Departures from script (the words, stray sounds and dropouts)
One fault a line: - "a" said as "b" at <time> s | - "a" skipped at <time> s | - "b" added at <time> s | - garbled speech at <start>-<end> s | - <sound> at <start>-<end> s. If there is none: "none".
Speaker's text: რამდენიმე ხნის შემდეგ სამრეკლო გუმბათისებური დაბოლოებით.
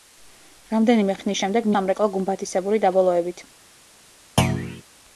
- thud at 4.4-4.8 s